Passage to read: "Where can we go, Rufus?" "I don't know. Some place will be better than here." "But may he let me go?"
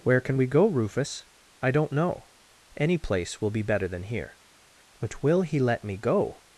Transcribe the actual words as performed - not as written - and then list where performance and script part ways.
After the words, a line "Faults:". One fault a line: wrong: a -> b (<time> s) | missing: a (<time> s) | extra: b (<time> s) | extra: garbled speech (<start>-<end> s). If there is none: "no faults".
"Where can we go, Rufus?" "I don't know. Any place will be better than here." "But will he let me go?"
Faults:
wrong: Some -> Any (2.8 s)
wrong: may -> will (5.2 s)